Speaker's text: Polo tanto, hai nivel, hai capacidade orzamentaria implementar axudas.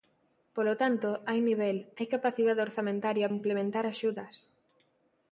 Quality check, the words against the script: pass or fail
pass